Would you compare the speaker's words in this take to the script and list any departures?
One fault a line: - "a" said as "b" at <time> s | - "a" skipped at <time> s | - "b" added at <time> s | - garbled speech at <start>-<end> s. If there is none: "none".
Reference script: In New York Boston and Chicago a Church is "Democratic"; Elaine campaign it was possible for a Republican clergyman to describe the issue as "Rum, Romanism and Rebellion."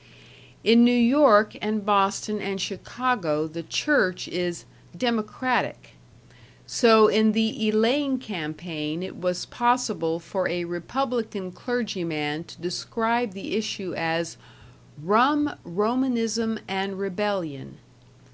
- "and" added at 1.6 s
- "a" said as "the" at 3.5 s
- "so in the" added at 6.7 s